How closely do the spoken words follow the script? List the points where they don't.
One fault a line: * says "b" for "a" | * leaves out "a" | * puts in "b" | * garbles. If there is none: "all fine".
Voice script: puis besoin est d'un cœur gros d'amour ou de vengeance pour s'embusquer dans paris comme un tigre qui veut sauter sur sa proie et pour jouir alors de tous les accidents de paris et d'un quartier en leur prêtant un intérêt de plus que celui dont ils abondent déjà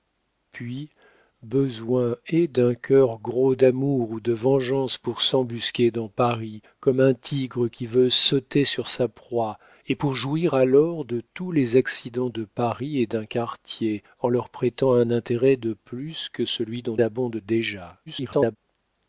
* leaves out "ils"
* garbles